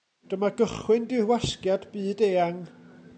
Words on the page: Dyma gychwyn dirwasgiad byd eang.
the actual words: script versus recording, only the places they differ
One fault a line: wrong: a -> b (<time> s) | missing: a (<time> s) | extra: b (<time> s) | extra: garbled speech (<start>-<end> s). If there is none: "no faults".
no faults